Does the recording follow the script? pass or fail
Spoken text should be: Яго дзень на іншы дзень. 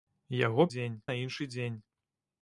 pass